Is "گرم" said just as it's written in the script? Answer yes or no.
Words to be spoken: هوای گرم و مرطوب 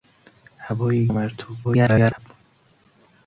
no